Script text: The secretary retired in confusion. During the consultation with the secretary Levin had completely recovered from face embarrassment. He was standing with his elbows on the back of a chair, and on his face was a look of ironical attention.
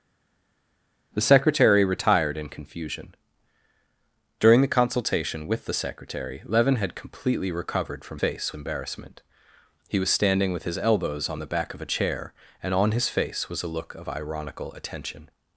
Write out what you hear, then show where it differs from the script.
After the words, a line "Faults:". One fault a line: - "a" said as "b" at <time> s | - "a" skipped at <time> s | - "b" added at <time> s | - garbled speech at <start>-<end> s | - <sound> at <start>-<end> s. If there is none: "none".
The secretary retired in confusion. During the consultation with the secretary Levin had completely recovered from face embarrassment. He was standing with his elbows on the back of a chair, and on his face was a look of ironical attention.
Faults:
none